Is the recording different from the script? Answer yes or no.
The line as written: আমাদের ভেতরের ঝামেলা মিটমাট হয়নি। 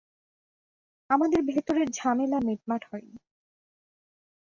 no